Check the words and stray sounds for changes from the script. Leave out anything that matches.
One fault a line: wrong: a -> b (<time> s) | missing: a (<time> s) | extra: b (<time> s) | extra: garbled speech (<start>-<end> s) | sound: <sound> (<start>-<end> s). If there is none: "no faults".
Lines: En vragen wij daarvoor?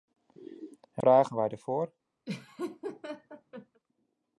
sound: laugh (2.3-3.8 s)